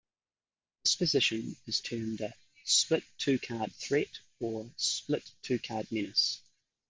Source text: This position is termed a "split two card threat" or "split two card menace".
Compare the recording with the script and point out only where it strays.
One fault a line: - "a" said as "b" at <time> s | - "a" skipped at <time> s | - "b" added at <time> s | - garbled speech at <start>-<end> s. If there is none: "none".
none